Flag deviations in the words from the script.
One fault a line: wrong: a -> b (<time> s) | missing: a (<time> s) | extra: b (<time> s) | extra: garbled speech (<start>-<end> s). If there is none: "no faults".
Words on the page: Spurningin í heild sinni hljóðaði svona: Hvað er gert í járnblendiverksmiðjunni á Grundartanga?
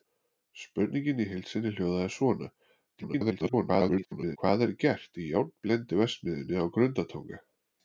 extra: garbled speech (3.0-4.4 s)